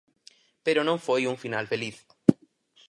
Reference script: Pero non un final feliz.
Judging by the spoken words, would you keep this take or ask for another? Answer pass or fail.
fail